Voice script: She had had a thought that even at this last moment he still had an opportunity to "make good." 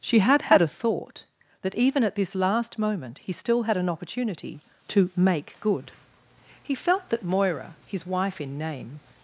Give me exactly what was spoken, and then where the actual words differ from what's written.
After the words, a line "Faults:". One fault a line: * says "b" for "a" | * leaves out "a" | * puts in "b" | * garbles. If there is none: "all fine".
She had had a thought that even at this last moment he still had an opportunity to "make good." He felt that Moira, his wife in name
Faults:
* puts in "He felt that Moira his wife in name"